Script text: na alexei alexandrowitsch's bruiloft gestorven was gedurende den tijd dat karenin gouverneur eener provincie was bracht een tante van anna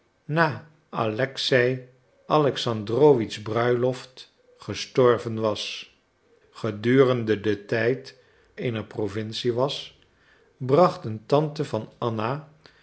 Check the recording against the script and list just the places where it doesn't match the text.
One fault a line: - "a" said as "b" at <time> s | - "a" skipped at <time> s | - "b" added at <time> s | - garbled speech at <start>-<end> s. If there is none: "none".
- "dat karenin gouverneur" skipped at 8.2 s